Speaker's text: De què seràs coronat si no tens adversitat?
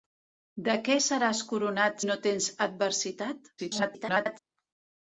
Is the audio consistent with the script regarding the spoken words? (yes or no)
no